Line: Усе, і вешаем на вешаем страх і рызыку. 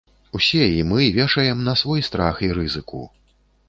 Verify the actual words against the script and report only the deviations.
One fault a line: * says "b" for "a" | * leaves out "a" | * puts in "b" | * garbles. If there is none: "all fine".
* puts in "мы"
* says "свой" for "вешаем"